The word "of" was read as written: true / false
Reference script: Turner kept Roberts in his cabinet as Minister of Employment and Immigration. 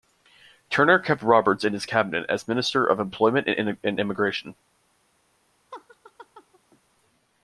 true